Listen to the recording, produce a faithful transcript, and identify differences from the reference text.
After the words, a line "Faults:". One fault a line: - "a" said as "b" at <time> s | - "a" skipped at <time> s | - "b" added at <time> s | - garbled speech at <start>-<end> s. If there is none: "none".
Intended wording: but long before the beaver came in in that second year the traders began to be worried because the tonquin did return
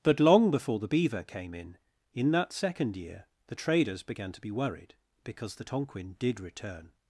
but long before the beaver came in in that second year the traders began to be worried because the tonquin did return
Faults:
none